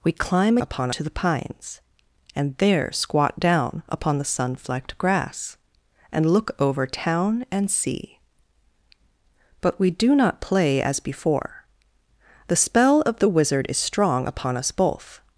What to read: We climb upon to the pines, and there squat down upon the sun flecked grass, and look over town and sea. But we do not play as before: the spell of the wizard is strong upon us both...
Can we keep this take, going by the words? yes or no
yes